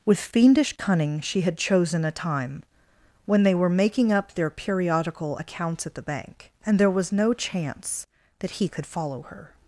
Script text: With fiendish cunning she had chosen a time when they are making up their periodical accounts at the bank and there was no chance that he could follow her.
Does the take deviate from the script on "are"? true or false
true